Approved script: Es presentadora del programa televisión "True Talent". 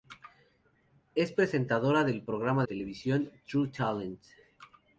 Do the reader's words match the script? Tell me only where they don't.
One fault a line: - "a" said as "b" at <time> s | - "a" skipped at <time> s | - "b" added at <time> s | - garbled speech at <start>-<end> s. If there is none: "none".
none